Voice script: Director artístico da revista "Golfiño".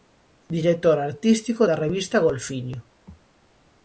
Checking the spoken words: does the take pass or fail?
pass